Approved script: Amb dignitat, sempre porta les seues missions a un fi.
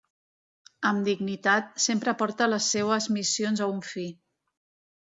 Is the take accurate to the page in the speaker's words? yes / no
yes